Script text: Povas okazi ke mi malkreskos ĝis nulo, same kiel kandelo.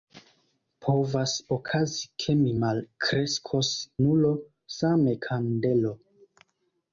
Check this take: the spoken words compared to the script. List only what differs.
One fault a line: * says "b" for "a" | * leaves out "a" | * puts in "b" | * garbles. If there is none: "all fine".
* leaves out "ĝis"
* leaves out "kiel"